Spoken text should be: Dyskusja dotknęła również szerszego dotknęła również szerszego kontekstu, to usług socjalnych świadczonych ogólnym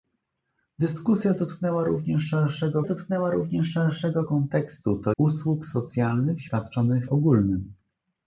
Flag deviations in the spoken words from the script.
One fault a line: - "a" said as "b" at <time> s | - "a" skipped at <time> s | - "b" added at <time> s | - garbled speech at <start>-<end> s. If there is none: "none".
none